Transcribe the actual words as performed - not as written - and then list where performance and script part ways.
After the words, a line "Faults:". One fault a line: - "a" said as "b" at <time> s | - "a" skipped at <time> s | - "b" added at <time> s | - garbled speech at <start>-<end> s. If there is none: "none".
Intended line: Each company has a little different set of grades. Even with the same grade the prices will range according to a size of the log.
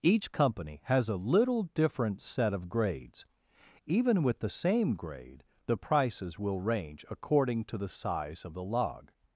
Each company has a little different set of grades. Even with the same grade the prices will range according to the size of the log.
Faults:
- "a" said as "the" at 7.8 s